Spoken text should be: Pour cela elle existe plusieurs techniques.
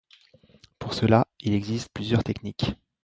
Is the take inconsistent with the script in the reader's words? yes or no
yes